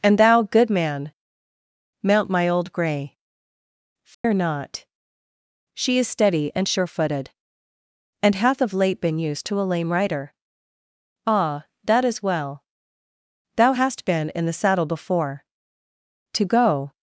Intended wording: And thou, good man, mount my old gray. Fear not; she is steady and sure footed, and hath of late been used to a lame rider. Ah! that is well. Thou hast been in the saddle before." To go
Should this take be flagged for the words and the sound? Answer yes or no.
yes